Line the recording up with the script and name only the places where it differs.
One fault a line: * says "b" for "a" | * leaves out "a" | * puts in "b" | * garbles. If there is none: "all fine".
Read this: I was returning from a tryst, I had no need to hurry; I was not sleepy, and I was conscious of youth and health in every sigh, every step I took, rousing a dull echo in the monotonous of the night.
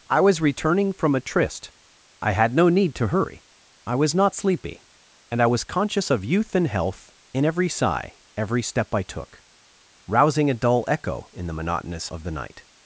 all fine